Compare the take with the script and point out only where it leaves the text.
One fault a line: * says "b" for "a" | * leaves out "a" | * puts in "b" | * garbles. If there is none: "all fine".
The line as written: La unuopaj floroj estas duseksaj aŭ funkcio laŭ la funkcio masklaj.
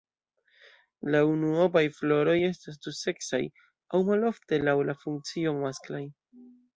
* says "malofte" for "funkcio"